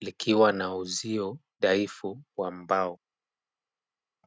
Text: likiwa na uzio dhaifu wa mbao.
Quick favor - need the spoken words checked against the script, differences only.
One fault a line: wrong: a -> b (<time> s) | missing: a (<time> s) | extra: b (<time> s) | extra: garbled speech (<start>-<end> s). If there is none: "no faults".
no faults